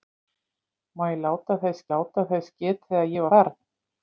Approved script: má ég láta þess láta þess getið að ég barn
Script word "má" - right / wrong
right